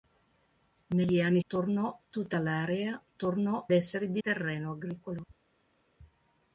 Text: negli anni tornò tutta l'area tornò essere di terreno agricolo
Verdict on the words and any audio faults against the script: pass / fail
pass